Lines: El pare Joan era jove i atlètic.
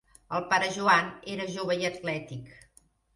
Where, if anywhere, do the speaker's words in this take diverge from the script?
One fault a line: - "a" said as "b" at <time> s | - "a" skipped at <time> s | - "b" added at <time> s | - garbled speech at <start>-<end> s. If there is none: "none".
none